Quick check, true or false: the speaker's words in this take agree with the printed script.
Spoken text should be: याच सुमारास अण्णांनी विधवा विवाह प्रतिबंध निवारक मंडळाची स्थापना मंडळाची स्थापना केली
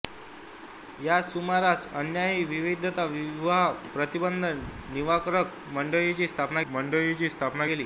true